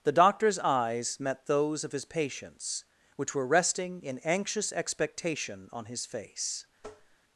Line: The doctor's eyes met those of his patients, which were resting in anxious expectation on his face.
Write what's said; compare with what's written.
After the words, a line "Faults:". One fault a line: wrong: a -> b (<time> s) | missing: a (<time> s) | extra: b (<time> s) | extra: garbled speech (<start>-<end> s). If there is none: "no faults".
The doctor's eyes met those of his patients, which were resting in anxious expectation on his face.
Faults:
no faults